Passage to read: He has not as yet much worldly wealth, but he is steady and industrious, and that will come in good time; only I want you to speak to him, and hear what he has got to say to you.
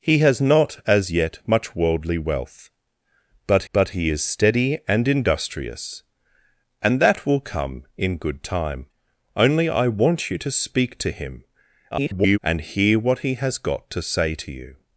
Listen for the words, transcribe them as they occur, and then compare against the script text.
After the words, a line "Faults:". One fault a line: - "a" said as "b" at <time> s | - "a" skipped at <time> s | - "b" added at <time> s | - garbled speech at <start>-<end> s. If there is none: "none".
He has not as yet much worldly wealth, but but he is steady and industrious, and that will come in good time; only I want you to speak to him, [garbled] and hear what he has got to say to you.
Faults:
- "but" added at 3.7 s
- garbled speech at 11.9-12.4 s